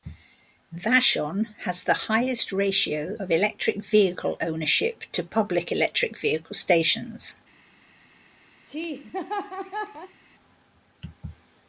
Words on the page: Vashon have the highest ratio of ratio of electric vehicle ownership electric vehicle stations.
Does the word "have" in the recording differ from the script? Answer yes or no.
yes